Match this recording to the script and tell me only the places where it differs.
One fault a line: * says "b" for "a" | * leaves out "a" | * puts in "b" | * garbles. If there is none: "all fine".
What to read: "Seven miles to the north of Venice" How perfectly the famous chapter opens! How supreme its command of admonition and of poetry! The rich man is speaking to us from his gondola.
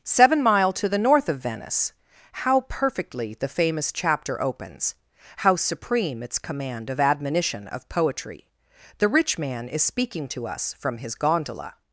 * says "mile" for "miles"
* leaves out "and"